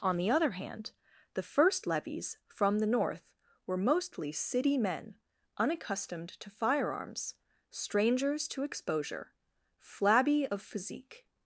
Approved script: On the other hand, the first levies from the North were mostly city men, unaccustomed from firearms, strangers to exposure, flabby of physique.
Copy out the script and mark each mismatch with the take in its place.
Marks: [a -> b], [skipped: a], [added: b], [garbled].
On the other hand, the first levies from the North were mostly city men, unaccustomed [from -> to] firearms, strangers to exposure, flabby of physique.